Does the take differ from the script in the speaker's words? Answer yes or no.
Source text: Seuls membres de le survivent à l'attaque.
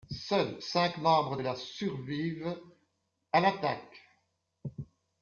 yes